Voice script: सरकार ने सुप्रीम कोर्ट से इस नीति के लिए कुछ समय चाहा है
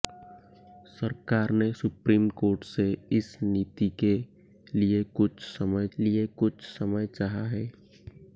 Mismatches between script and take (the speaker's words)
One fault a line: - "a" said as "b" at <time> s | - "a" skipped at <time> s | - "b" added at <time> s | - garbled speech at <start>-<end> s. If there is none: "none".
- "लिए कुछ समय" added at 6.0 s